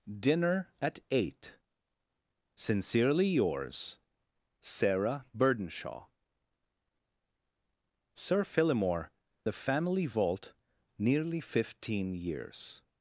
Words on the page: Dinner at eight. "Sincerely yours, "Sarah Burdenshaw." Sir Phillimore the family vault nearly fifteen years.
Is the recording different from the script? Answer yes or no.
no